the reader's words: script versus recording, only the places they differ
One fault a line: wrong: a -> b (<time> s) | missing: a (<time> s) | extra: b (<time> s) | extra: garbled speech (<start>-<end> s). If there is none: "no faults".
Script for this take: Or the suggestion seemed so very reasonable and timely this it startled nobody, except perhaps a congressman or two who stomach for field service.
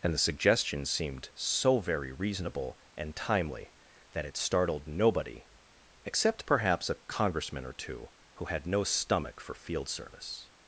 wrong: Or -> And (0.0 s)
wrong: this -> that (4.1 s)
extra: had no (8.4 s)